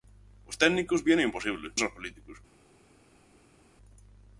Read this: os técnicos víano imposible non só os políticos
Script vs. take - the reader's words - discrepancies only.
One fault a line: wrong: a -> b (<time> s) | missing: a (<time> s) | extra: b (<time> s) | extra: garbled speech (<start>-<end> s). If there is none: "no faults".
missing: non (1.7 s)